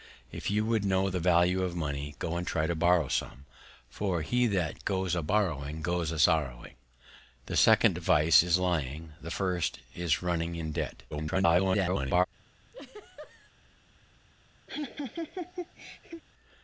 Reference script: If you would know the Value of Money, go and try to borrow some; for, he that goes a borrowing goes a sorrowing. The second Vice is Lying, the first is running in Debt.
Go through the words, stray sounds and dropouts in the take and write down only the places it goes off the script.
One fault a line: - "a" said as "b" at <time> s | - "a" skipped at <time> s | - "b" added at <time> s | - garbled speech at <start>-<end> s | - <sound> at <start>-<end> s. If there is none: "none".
- garbled speech at 11.1-12.3 s
- laugh at 12.7-13.5 s
- laugh at 14.7-16.2 s